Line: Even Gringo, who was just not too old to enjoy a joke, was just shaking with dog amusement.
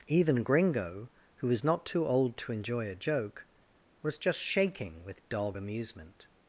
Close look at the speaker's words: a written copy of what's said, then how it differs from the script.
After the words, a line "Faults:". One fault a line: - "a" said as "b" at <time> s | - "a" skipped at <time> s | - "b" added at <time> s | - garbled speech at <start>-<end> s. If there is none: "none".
Even Gringo, who was not too old to enjoy a joke, was just shaking with dog amusement.
Faults:
- "just" skipped at 1.6 s